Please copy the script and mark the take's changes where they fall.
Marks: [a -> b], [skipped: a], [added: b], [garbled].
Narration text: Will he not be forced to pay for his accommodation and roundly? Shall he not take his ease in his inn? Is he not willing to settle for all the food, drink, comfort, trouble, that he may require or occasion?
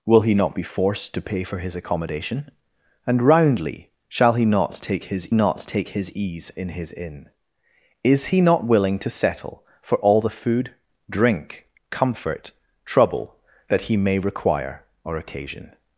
Will he not be forced to pay for his accommodation and roundly? Shall he not take his [added: not take his] ease in his inn? Is he not willing to settle for all the food, drink, comfort, trouble, that he may require or occasion?